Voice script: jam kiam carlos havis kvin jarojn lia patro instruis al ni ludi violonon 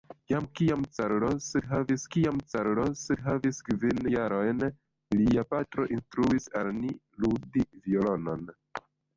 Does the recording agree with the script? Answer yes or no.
no